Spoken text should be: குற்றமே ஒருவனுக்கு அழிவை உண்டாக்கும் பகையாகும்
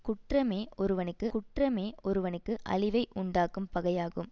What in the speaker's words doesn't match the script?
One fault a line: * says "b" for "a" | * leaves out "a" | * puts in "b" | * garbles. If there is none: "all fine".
* puts in "குற்றமே ஒருவனுக்கு"